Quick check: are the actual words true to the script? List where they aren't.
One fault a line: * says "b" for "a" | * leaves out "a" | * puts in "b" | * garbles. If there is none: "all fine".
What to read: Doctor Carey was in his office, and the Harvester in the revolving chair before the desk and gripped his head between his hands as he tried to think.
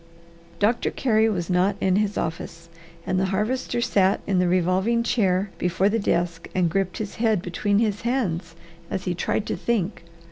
* puts in "not"
* puts in "sat"